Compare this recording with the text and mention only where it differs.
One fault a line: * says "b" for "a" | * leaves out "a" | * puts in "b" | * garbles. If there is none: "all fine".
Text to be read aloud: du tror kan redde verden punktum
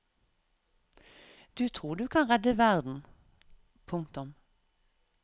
* puts in "du"